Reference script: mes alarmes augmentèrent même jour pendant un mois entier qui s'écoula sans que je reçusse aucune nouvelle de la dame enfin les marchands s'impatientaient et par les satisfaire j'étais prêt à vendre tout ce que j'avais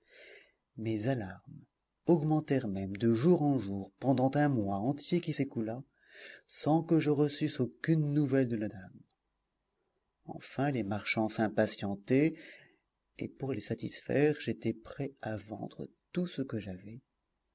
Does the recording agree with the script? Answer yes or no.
no